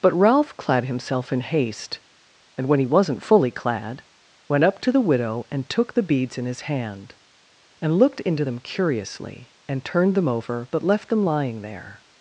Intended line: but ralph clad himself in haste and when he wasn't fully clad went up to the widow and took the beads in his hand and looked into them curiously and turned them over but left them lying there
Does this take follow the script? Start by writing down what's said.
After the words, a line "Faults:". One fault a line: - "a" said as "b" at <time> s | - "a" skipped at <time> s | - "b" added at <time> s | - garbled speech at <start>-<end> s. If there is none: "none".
but ralph clad himself in haste and when he wasn't fully clad went up to the widow and took the beads in his hand and looked into them curiously and turned them over but left them lying there
Faults:
none